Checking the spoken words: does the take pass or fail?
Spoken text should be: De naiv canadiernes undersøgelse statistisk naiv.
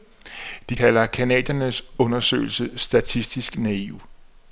fail